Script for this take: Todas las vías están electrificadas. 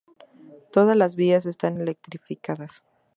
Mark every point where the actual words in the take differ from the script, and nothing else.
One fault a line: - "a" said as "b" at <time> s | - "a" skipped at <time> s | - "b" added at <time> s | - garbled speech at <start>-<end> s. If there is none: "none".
none